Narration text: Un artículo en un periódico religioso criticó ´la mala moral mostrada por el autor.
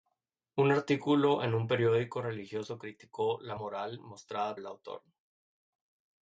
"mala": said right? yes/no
no